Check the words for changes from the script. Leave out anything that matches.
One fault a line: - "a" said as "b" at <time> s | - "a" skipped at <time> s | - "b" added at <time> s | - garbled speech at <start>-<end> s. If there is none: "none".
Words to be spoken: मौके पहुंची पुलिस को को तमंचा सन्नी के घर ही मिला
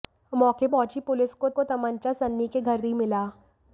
none